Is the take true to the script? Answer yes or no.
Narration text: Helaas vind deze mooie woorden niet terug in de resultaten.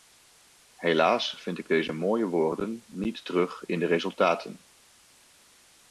no